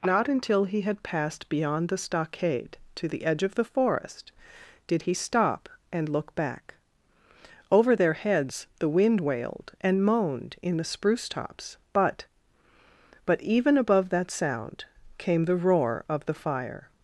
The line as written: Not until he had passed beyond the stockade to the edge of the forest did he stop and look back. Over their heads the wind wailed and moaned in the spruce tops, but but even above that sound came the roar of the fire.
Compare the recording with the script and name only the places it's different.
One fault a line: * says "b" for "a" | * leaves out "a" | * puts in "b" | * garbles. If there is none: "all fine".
all fine